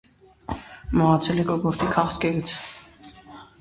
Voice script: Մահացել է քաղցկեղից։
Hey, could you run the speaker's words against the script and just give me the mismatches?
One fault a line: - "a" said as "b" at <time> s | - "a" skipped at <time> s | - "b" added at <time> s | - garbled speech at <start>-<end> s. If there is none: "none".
- "կոկորդի" added at 1.5 s